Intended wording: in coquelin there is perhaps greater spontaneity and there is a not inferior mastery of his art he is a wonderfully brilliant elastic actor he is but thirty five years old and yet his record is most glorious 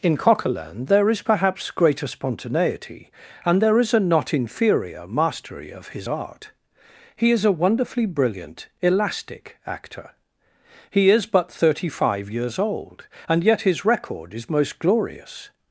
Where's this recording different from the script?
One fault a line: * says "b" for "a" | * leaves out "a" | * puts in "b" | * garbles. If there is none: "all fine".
all fine